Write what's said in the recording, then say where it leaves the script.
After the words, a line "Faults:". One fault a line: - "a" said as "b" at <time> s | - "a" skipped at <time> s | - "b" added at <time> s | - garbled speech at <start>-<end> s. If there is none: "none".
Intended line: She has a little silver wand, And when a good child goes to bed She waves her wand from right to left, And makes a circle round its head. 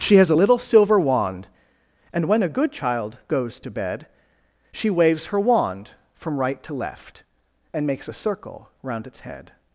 She has a little silver wand, And when a good child goes to bed She waves her wand from right to left, And makes a circle round its head.
Faults:
none